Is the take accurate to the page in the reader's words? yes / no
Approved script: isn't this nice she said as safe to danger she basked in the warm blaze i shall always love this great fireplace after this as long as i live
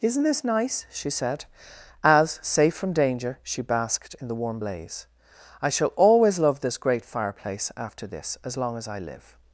no